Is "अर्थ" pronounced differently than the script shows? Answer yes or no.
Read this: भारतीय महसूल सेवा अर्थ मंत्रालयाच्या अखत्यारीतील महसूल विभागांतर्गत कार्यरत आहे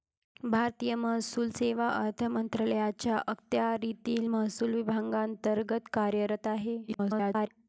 no